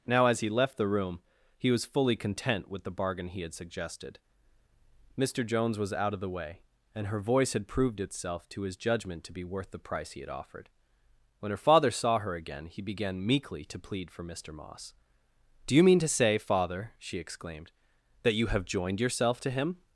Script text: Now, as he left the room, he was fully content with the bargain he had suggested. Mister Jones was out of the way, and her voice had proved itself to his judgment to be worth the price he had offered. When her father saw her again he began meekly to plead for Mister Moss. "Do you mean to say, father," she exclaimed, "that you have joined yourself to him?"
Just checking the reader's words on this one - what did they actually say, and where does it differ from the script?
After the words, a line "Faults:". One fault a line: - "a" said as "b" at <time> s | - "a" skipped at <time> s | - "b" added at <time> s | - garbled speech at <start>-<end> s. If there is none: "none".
Now, as he left the room, he was fully content with the bargain he had suggested. Mister Jones was out of the way, and her voice had proved itself to his judgment to be worth the price he had offered. When her father saw her again he began meekly to plead for Mister Moss. "Do you mean to say, father," she exclaimed, "that you have joined yourself to him?"
Faults:
none